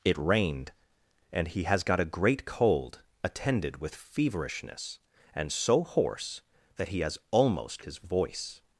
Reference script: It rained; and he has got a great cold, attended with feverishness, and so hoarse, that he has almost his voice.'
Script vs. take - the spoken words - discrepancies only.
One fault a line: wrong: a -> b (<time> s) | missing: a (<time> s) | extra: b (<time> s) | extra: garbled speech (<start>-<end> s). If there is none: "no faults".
no faults